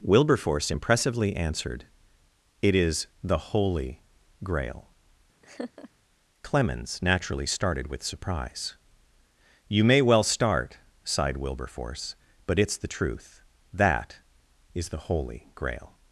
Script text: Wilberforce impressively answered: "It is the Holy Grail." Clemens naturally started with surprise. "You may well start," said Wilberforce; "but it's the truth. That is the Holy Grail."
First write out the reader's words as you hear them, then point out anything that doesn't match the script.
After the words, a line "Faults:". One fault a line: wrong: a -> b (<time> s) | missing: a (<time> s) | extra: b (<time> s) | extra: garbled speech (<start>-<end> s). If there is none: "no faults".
Wilberforce impressively answered: "It is the Holy Grail." Clemens naturally started with surprise. "You may well start," sighed Wilberforce; "but it's the truth. That is the Holy Grail."
Faults:
wrong: said -> sighed (11.0 s)